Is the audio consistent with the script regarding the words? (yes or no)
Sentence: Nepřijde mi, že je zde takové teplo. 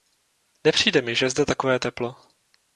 yes